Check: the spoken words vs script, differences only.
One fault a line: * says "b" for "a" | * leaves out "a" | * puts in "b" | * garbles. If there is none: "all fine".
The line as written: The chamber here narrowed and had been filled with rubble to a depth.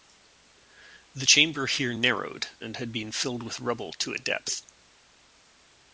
all fine